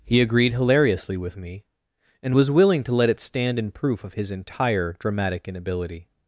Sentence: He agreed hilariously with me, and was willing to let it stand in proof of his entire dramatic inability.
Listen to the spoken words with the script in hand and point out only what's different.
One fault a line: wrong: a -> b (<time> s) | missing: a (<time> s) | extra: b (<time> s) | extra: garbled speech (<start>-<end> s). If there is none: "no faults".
no faults